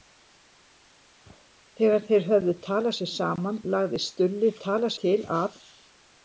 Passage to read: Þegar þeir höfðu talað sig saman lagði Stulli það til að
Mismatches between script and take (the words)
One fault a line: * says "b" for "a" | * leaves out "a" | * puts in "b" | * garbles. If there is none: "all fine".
* says "talað" for "það"